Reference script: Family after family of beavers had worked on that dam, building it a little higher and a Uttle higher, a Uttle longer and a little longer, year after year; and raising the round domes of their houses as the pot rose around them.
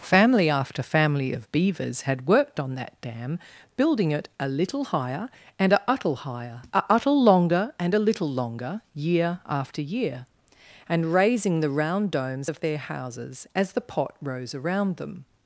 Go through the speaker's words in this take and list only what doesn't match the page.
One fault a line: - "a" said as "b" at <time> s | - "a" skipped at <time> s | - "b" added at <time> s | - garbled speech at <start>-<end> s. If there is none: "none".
none